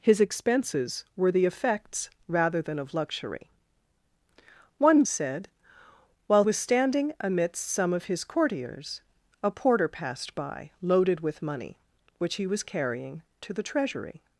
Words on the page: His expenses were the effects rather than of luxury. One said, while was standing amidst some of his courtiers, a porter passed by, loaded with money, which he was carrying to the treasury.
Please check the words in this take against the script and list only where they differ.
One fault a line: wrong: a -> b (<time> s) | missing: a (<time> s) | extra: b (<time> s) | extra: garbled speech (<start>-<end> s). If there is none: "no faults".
no faults